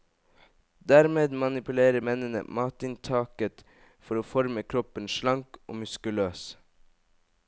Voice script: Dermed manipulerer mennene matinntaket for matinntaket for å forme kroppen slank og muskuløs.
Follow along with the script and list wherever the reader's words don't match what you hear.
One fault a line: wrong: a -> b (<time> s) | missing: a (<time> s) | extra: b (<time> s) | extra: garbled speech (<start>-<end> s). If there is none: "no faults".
missing: matinntaket for (4.2 s)